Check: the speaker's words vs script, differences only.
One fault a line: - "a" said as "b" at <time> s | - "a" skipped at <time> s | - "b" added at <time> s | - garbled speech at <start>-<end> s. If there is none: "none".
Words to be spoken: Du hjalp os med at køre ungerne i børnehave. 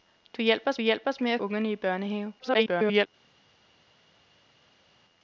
- "hjalp os" added at 0.8 s
- "køre" skipped at 1.4 s
- garbled speech at 2.4-3.1 s